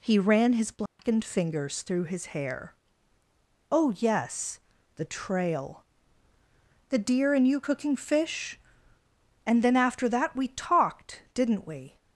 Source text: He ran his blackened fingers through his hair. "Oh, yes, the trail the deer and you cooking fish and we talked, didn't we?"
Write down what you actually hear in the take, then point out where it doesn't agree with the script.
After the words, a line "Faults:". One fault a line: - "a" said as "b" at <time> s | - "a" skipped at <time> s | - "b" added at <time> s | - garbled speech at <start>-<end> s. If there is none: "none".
He ran his blackened fingers through his hair. "Oh, yes, the trail the deer and you cooking fish and then after that we talked, didn't we?"
Faults:
- "then after that" added at 9.6 s